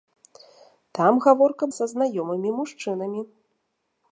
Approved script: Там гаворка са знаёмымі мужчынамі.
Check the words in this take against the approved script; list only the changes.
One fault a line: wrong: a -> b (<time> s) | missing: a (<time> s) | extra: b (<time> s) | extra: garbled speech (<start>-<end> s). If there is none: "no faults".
no faults